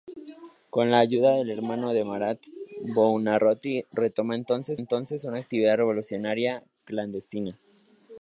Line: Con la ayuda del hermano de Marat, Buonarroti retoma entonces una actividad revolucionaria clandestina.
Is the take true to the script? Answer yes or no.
no